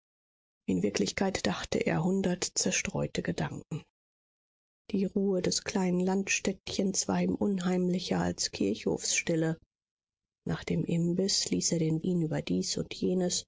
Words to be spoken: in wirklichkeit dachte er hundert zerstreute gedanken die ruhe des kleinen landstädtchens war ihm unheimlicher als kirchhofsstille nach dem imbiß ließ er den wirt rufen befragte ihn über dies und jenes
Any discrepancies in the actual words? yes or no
yes